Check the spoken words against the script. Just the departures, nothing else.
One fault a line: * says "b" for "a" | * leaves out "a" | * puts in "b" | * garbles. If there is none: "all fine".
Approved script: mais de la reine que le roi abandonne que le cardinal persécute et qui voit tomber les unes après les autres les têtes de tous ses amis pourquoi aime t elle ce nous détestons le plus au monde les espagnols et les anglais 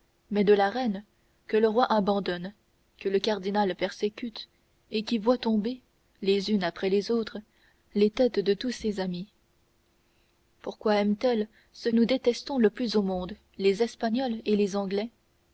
all fine